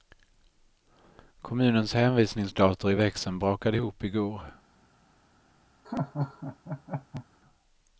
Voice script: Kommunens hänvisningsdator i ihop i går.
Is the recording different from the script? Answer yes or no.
yes